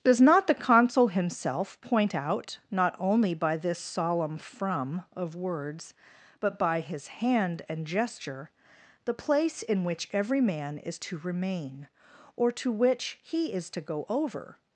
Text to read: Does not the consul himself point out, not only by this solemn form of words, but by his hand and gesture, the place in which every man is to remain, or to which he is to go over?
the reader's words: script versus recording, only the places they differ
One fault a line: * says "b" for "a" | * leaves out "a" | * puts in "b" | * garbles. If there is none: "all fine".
* says "from" for "form"